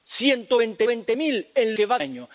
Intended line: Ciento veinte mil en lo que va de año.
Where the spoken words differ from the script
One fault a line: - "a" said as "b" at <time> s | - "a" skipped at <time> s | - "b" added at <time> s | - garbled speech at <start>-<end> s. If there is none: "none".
- "veinte" added at 0.9 s
- "lo" skipped at 1.8 s
- "de" skipped at 2.0 s